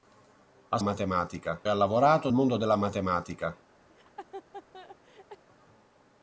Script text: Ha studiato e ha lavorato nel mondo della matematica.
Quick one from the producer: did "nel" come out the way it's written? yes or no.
no